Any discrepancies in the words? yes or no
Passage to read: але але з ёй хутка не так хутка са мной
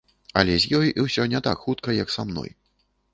yes